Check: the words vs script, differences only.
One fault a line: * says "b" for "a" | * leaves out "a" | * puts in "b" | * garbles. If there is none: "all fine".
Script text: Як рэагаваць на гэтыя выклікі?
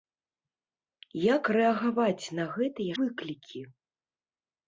all fine